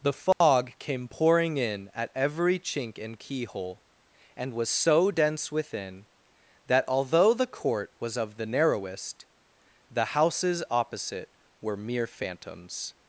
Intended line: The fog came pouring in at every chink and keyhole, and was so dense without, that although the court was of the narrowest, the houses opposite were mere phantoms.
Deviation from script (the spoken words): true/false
true